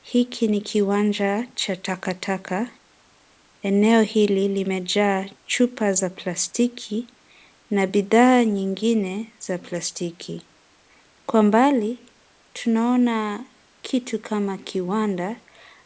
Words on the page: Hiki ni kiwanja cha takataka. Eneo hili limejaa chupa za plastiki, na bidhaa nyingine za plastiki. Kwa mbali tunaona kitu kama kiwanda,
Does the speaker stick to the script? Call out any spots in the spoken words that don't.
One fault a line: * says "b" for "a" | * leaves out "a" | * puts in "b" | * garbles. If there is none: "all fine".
all fine